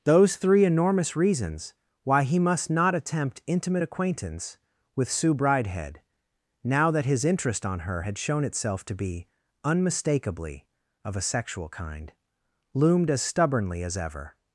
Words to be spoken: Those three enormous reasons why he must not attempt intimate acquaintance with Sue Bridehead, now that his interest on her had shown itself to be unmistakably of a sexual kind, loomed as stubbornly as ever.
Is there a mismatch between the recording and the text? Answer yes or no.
no